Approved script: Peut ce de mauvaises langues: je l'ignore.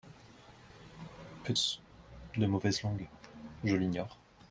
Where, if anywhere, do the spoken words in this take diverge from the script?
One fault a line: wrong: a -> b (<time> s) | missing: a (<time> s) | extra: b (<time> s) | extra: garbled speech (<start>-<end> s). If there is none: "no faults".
no faults